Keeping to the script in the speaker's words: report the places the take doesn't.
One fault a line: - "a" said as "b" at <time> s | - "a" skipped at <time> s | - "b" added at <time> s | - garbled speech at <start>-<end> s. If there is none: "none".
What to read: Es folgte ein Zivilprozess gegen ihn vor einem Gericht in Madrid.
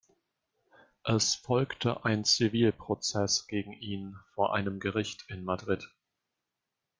none